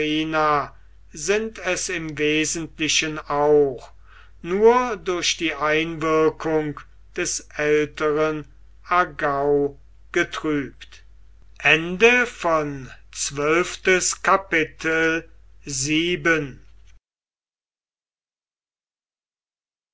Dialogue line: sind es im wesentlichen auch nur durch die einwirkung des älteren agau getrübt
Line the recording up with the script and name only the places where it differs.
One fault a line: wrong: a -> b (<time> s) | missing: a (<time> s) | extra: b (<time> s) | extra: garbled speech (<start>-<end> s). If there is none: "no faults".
no faults